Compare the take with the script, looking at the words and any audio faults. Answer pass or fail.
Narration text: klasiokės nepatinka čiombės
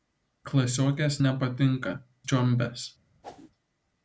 fail